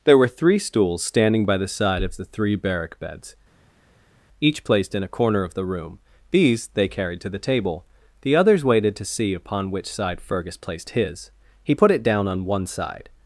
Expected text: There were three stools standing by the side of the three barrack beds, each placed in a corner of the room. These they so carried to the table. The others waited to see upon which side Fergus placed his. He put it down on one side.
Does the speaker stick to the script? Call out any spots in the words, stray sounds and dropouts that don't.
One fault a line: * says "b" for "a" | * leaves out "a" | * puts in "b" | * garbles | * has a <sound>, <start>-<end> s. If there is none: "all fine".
* leaves out "so"